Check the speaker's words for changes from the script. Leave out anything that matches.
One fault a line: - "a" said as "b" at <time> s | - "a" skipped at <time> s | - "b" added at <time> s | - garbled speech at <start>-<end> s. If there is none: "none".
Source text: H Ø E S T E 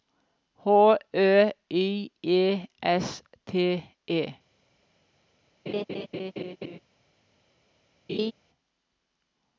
- "Y" added at 1.7 s